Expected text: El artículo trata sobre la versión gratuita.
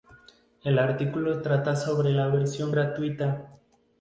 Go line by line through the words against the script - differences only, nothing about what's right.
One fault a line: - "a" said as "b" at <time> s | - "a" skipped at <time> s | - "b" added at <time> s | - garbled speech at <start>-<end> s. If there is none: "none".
none